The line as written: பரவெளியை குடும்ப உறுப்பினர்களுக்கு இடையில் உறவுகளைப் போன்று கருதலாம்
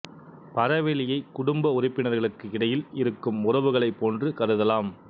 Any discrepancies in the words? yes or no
yes